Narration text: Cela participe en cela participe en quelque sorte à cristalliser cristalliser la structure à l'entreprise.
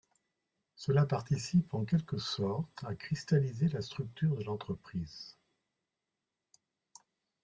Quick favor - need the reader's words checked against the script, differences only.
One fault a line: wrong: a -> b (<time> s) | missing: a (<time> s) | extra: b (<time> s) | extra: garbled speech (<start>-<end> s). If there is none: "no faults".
missing: cela participe en (1.8 s)
missing: cristalliser (3.7 s)
wrong: à -> de (4.3 s)